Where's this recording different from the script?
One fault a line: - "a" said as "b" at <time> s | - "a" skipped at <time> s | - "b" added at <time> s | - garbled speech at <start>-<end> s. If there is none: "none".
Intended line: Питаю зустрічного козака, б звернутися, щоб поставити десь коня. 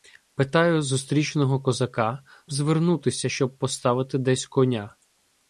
none